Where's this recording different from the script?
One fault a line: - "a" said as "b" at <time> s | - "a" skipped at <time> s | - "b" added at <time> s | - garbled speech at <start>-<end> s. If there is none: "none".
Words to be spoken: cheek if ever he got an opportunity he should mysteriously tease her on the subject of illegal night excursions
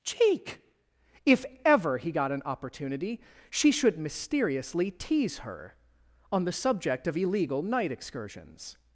- "he" said as "she" at 3.5 s